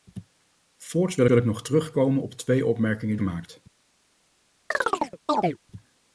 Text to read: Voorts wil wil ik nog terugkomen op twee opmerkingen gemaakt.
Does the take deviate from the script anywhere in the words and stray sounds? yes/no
yes